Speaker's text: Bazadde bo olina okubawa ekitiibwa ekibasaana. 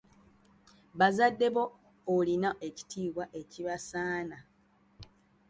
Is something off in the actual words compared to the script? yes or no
yes